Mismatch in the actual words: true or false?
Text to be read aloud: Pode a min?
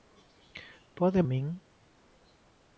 false